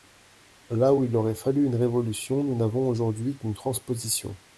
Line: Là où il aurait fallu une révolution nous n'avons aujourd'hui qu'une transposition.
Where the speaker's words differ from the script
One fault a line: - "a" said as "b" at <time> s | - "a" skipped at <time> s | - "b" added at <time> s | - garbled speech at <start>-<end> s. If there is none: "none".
none